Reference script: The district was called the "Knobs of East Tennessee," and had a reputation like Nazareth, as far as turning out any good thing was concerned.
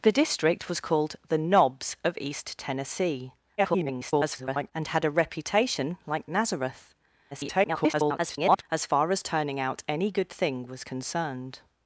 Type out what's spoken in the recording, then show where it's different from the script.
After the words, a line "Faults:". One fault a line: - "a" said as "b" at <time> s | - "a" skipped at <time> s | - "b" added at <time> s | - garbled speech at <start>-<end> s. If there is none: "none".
The district was called the "Knobs of East Tennessee," [garbled] and had a reputation like Nazareth, [garbled] as far as turning out any good thing was concerned.
Faults:
- garbled speech at 3.6-4.7 s
- garbled speech at 7.3-8.6 s